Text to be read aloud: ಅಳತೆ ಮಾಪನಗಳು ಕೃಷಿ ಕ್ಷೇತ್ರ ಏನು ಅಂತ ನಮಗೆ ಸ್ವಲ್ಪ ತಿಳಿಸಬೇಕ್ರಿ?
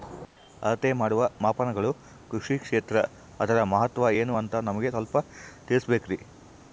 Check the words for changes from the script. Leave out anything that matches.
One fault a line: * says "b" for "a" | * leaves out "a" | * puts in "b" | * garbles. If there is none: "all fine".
* puts in "ಮಾಡುವ"
* puts in "ಅದರ ಮಹತ್ವ"